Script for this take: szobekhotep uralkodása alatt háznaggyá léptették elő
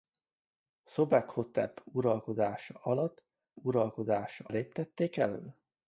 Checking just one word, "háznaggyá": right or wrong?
wrong